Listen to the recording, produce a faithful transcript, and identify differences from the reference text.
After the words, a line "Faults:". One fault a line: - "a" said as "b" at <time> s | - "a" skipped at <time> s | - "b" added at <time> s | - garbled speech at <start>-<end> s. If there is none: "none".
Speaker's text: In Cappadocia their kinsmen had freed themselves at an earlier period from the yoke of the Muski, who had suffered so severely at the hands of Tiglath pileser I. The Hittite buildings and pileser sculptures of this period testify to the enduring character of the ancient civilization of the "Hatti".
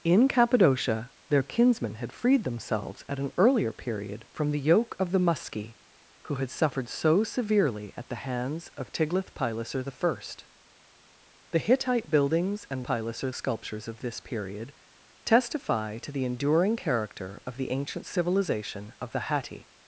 In Cappadocia their kinsmen had freed themselves at an earlier period from the yoke of the Muski, who had suffered so severely at the hands of Tiglath pileser I. The Hittite buildings and pileser sculptures of this period testify to the enduring character of the ancient civilization of the "Hatti".
Faults:
none